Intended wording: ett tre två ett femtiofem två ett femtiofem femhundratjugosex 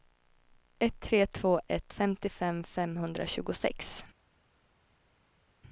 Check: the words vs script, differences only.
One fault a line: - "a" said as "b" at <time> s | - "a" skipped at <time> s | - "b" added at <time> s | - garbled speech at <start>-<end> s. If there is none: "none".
- "två ett femtiofem" skipped at 2.6 s